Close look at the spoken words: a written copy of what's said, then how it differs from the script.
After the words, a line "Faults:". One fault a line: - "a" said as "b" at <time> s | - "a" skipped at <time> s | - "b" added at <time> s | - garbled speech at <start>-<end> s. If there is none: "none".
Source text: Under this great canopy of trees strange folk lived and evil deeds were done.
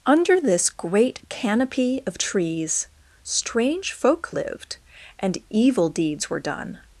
Under this great canopy of trees strange folk lived and evil deeds were done.
Faults:
none